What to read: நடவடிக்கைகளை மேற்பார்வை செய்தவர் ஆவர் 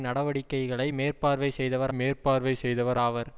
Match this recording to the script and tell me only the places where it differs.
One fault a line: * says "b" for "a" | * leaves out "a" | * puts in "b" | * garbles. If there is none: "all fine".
* puts in "மேற்பார்வை செய்தவர்"